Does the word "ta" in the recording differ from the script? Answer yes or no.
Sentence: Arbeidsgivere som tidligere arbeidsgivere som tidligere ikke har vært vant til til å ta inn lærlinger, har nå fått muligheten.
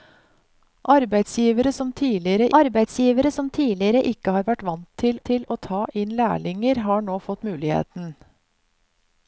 no